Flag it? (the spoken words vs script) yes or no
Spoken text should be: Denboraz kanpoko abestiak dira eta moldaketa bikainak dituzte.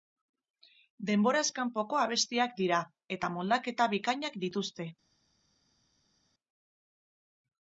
no